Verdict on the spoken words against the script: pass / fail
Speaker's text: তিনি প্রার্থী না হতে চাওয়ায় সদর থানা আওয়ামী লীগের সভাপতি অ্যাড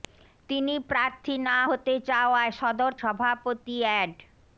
fail